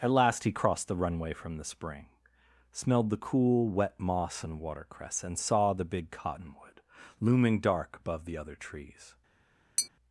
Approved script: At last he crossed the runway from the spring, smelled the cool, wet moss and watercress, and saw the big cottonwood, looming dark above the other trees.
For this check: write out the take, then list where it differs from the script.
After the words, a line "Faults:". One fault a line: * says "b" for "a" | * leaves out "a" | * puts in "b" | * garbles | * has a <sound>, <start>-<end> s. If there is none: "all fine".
At last he crossed the runway from the spring, smelled the cool, wet moss and watercress, and saw the big cottonwood, looming dark above the other trees.
Faults:
* has a tap, 9.8-9.9 s